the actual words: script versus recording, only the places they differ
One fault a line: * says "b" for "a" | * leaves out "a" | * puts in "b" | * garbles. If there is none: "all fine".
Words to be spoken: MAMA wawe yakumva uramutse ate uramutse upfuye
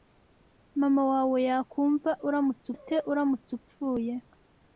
all fine